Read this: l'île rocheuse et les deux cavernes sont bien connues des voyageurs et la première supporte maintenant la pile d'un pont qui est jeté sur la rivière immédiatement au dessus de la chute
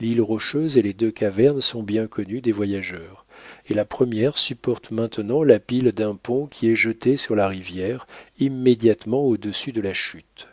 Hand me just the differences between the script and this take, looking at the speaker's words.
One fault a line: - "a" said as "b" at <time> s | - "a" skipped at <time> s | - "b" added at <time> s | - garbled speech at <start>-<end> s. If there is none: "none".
none